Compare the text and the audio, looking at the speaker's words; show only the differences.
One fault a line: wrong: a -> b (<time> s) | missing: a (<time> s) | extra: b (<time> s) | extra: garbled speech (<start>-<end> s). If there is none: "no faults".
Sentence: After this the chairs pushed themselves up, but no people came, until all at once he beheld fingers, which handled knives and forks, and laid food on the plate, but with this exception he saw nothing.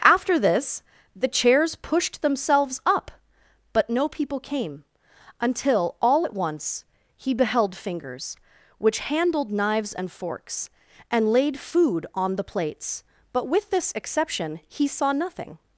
wrong: plate -> plates (12.4 s)